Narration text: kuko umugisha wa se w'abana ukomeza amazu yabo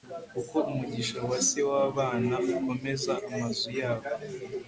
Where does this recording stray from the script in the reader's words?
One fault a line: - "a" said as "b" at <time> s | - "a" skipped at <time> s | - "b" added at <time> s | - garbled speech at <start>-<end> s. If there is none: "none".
none